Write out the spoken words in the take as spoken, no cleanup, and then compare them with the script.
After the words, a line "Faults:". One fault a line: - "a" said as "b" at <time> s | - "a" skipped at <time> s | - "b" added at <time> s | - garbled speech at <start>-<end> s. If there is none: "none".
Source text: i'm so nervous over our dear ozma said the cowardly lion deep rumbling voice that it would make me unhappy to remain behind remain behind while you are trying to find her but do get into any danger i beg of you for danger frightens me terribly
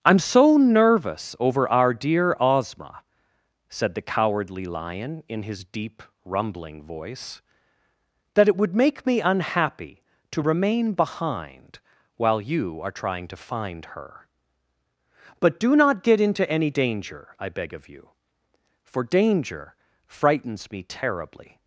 i'm so nervous over our dear ozma said the cowardly lion in his deep rumbling voice that it would make me unhappy to remain behind while you are trying to find her but do not get into any danger i beg of you for danger frightens me terribly
Faults:
- "in his" added at 5.3 s
- "remain behind" skipped at 11.8 s
- "not" added at 15.7 s